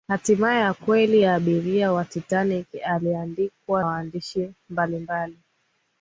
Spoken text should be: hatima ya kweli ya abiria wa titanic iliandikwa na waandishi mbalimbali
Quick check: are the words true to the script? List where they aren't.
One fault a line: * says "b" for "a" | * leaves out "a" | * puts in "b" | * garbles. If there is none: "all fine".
* leaves out "na"